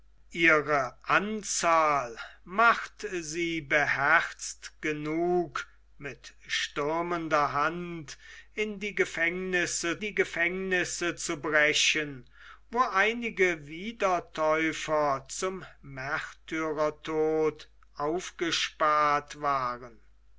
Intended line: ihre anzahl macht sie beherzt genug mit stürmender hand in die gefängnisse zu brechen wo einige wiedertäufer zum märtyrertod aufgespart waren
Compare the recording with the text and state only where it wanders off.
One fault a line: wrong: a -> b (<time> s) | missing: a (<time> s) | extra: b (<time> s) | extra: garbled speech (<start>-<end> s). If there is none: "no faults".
extra: die gefängnisse (10.0 s)